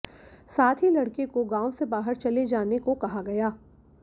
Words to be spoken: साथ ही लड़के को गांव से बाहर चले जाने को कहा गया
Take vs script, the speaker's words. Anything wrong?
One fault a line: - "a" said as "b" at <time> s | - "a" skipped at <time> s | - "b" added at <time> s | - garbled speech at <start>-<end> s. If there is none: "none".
none